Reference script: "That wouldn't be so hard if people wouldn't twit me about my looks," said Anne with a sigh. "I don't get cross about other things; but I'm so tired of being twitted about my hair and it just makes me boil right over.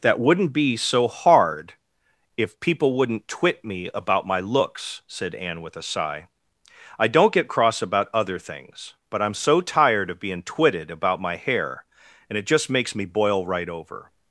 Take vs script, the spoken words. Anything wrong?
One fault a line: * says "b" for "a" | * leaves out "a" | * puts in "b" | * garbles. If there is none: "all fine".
all fine